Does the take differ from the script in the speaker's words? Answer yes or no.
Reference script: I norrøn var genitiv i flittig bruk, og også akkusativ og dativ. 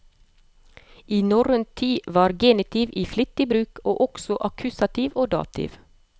yes